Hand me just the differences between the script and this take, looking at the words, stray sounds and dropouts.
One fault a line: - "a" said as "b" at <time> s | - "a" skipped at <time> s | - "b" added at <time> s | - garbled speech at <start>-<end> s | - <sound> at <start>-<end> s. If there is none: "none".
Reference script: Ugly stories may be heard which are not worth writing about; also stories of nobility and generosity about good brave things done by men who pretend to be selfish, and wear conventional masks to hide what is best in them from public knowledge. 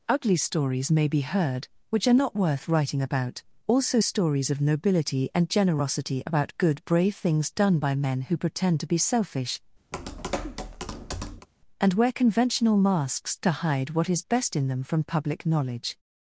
- tap at 9.9-11.5 s